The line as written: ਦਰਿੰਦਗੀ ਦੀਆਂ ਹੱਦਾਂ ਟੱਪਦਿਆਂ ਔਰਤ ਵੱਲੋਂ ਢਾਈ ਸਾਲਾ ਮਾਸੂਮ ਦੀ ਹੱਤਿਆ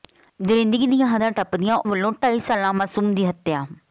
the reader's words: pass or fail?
fail